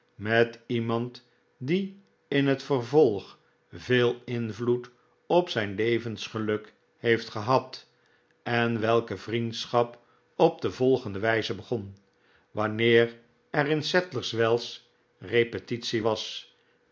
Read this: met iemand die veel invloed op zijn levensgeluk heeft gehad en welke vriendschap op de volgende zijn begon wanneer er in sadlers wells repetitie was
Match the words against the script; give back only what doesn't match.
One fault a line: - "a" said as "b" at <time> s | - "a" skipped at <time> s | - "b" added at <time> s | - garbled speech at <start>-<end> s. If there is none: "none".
- "in het vervolg" added at 2.3 s
- "zijn" said as "wijze" at 11.2 s